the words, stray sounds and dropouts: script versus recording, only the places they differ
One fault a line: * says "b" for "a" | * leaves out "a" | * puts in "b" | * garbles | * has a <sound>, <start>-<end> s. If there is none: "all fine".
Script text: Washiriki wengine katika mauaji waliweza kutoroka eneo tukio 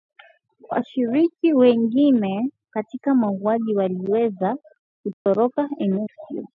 * has a dropout, 5.1-5.3 s